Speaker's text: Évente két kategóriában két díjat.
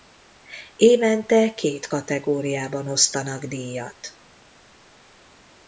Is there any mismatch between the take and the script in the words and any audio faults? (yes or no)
yes